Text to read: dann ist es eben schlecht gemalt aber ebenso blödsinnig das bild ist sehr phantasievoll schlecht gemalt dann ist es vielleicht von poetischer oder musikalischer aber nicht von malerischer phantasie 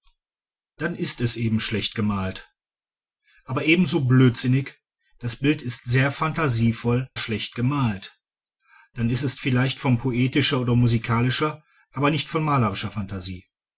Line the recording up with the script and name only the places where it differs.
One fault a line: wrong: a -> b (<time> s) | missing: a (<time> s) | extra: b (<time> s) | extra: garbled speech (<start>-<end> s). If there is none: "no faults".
no faults